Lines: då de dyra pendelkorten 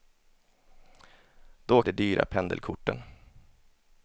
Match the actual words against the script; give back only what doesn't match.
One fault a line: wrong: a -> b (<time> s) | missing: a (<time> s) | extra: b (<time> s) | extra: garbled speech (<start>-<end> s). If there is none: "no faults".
no faults